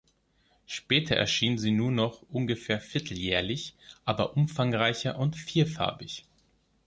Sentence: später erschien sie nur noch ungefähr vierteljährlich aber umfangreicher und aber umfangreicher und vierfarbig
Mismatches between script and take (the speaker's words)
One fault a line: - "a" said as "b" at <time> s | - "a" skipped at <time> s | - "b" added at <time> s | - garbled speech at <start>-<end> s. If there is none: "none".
- "aber umfangreicher und" skipped at 5.3 s